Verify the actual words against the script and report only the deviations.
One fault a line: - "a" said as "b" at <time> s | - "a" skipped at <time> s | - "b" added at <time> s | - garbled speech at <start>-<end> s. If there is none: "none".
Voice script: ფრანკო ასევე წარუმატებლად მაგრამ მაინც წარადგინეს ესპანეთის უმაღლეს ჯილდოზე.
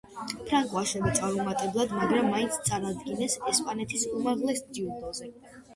none